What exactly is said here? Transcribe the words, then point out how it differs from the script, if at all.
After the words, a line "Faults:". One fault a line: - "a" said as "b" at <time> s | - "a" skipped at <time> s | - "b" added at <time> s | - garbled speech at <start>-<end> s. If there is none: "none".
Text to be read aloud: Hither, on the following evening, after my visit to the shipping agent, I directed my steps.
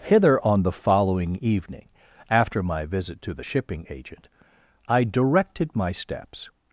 Hither, on the following evening, after my visit to the shipping agent, I directed my steps.
Faults:
none